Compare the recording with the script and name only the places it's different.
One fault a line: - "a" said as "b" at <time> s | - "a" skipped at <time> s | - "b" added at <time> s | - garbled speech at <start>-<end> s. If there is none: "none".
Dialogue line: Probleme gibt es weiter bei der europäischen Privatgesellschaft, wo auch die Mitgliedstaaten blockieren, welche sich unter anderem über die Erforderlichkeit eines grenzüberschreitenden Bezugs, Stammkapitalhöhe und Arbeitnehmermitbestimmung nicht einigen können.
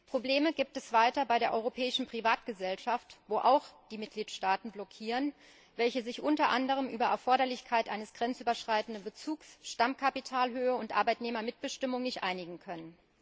none